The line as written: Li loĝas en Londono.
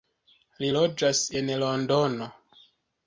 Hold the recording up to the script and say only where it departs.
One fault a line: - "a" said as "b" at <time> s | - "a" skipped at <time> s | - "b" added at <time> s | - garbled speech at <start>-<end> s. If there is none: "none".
none